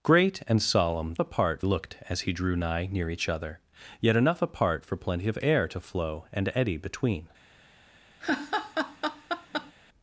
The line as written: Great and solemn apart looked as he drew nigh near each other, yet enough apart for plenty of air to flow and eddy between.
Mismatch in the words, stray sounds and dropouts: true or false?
true